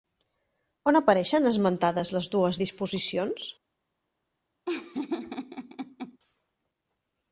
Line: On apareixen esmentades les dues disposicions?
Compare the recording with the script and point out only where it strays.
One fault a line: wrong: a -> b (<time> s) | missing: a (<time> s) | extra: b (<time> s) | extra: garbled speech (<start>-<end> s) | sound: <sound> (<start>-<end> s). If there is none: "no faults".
sound: laugh (4.7-6.2 s)